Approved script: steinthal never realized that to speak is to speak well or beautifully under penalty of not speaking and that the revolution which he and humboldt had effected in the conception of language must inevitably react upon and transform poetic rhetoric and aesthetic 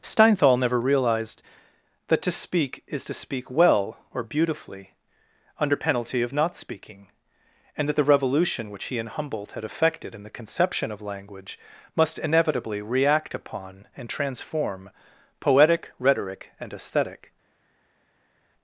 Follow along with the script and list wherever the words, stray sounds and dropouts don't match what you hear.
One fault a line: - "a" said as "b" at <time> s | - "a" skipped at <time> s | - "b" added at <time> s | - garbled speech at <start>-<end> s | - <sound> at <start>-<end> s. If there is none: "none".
none